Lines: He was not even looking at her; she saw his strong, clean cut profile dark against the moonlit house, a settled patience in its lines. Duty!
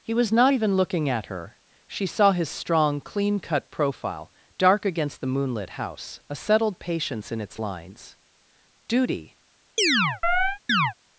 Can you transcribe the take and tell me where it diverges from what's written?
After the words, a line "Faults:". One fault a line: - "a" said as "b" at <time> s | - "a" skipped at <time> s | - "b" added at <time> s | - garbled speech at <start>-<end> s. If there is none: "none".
He was not even looking at her; she saw his strong, clean cut profile dark against the moonlit house, a settled patience in its lines. Duty!
Faults:
none